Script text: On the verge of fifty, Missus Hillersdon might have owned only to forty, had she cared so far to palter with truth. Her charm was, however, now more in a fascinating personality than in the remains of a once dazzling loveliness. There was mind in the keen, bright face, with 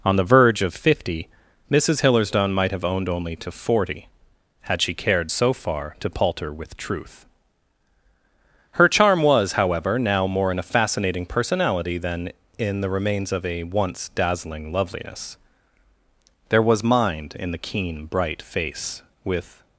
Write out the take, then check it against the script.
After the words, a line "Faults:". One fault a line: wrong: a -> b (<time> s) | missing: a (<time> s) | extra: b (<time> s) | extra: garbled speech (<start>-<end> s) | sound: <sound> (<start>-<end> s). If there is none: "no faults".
On the verge of fifty, Missus Hillersdon might have owned only to forty, had she cared so far to palter with truth. Her charm was, however, now more in a fascinating personality than in the remains of a once dazzling loveliness. There was mind in the keen, bright face, with
Faults:
no faults